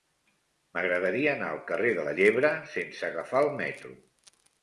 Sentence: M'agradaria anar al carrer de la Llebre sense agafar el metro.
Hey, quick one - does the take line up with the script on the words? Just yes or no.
yes